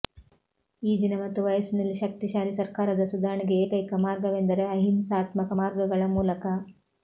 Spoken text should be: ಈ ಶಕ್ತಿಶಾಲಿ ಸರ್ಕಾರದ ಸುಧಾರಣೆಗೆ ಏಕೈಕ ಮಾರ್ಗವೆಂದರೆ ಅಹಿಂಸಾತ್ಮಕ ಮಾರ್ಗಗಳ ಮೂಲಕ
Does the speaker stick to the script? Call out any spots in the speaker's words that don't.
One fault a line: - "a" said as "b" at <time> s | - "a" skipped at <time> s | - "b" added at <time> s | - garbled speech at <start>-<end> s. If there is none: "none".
- "ದಿನ ಮತ್ತು ವಯಸ್ಸಿನಲ್ಲಿ" added at 1.0 s